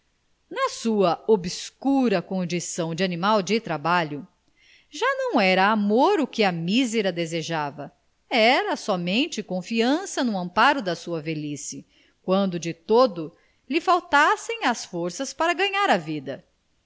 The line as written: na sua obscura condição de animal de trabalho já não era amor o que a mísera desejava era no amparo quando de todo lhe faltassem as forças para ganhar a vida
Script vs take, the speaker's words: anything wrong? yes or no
yes